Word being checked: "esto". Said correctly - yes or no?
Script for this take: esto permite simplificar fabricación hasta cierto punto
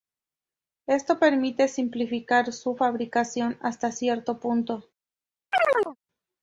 yes